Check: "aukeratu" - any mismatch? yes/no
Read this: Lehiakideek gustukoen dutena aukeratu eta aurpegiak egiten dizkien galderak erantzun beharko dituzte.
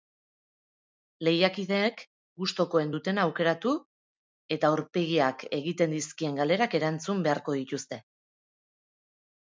no